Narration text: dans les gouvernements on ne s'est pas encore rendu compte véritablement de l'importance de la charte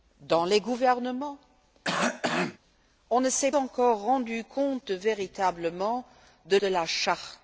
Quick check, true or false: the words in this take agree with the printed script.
false